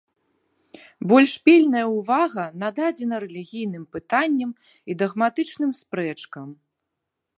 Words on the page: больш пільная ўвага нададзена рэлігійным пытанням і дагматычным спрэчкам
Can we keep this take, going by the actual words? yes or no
yes